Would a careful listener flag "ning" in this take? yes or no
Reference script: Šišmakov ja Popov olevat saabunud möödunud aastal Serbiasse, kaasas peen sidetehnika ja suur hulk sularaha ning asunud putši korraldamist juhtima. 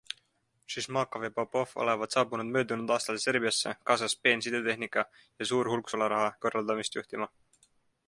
yes